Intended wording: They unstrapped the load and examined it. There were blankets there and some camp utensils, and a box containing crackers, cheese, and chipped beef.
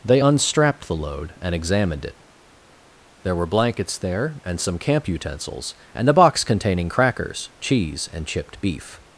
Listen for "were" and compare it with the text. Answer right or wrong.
right